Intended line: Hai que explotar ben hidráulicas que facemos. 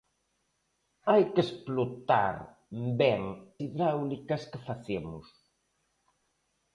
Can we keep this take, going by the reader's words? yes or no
yes